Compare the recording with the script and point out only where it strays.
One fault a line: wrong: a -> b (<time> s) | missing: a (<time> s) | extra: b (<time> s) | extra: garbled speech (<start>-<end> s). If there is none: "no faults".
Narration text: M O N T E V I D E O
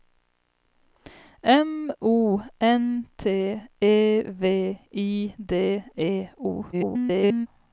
extra: garbled speech (6.7-7.5 s)